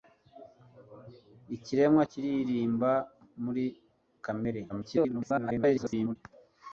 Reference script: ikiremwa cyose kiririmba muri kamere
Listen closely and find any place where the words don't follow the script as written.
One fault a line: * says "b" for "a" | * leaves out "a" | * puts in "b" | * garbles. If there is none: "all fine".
* leaves out "cyose"
* garbles